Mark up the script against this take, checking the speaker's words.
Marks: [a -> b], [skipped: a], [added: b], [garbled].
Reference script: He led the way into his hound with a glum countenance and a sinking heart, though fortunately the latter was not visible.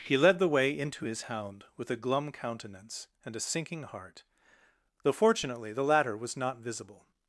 He led the way into his hound with a glum countenance and a sinking heart, though fortunately the latter was not visible.